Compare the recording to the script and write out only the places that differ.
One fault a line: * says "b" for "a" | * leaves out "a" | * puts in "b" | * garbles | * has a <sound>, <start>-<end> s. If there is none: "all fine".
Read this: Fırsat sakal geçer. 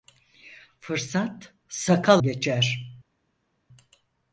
all fine